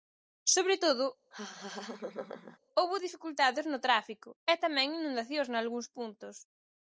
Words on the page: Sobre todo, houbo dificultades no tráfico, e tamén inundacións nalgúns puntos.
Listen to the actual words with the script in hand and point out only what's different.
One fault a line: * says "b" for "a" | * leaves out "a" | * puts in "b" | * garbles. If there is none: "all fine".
all fine